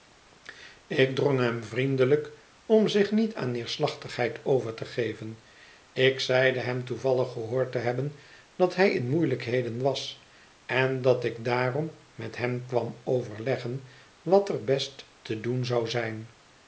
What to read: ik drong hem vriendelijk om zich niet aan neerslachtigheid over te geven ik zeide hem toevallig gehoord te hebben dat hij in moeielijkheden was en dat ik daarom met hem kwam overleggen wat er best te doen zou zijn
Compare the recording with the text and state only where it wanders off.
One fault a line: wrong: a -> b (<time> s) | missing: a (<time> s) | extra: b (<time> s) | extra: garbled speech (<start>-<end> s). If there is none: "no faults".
no faults